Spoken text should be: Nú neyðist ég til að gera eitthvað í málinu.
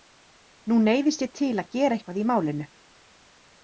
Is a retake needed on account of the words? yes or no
no